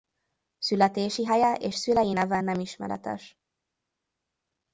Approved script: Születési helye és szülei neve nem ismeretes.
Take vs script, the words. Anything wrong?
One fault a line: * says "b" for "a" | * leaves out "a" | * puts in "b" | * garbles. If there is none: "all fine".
all fine